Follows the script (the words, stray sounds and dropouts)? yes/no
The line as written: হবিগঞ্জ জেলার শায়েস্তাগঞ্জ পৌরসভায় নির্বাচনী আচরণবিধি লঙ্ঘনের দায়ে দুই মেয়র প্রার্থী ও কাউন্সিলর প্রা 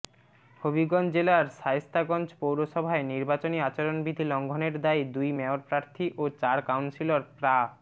no